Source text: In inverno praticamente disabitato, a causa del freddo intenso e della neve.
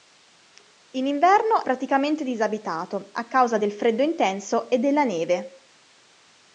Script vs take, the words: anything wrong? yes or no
no